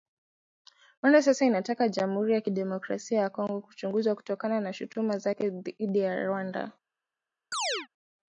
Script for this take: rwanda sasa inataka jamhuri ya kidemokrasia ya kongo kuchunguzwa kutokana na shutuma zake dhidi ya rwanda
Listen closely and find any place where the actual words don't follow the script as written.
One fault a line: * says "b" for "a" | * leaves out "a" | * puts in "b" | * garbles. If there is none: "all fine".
all fine